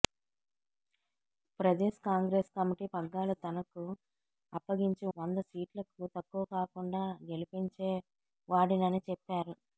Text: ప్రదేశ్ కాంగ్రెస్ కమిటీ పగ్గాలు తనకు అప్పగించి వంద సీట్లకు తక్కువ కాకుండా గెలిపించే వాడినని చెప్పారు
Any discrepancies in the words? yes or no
no